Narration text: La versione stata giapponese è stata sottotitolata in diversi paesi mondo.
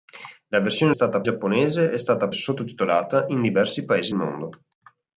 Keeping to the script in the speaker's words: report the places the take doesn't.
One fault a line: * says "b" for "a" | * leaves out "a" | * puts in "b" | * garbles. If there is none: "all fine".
all fine